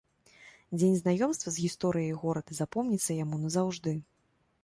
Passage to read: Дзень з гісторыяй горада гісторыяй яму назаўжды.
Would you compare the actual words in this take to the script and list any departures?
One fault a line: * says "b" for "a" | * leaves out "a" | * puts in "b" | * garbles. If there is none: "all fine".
* puts in "знаёмства"
* says "запомніцца" for "гісторыяй"